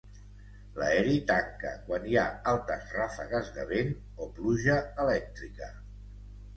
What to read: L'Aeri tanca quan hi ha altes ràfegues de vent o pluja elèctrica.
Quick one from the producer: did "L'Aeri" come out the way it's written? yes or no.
yes